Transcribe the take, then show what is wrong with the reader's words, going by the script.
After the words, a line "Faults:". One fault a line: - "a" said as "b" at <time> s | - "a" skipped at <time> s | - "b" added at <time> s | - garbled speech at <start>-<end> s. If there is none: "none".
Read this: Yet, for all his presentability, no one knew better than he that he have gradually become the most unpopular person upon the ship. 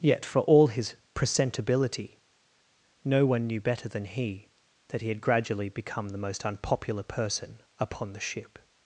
Yet, for all his presentability, no one knew better than he that he had gradually become the most unpopular person upon the ship.
Faults:
- "have" said as "had" at 5.1 s